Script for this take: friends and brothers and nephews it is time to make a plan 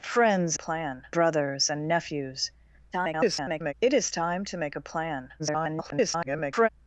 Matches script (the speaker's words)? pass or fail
fail